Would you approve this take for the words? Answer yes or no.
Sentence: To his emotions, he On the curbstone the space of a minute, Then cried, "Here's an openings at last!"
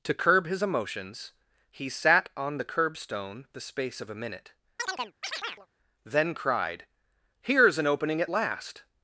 no